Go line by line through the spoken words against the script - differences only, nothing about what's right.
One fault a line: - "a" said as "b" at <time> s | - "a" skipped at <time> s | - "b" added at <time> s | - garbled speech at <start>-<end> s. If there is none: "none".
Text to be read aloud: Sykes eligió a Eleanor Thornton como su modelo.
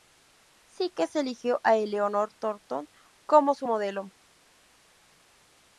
none